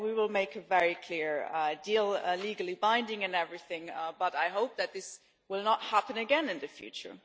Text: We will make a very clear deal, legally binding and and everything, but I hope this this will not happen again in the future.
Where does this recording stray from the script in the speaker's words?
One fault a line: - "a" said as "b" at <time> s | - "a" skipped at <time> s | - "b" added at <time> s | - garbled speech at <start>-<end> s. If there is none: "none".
- "and" skipped at 3.4 s
- "this" said as "that" at 4.8 s